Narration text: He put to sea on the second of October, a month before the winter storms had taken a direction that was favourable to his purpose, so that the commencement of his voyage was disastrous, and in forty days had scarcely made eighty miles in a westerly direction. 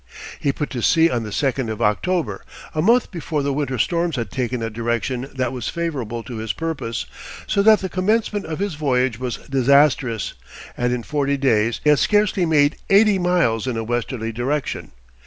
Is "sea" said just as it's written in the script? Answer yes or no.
yes